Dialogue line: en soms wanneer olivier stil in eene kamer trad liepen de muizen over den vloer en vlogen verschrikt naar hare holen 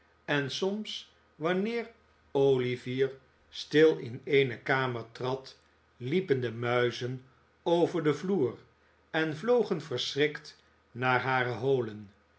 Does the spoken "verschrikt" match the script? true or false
true